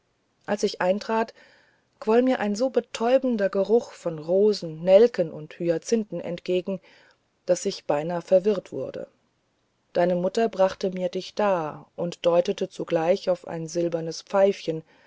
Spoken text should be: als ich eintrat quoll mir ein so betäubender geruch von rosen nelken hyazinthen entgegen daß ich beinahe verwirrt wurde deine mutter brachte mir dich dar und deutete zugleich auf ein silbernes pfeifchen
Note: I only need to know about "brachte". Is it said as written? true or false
true